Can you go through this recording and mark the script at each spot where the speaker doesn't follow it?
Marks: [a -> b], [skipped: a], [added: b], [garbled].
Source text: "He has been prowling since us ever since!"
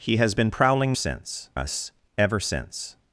"He has been prowling since us ever since!"